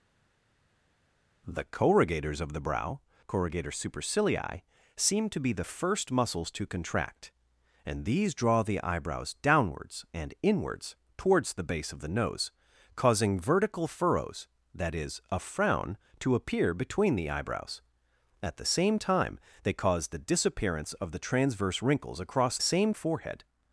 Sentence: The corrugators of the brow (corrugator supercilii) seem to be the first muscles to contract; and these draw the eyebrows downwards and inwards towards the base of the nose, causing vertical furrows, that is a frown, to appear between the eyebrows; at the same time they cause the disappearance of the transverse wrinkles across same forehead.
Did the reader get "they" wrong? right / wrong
right